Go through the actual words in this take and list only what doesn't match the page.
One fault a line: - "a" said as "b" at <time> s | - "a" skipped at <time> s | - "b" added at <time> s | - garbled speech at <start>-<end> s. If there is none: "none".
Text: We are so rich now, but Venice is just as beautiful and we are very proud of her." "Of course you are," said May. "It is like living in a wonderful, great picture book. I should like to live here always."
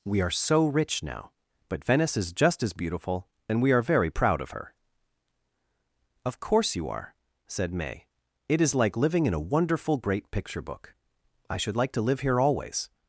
none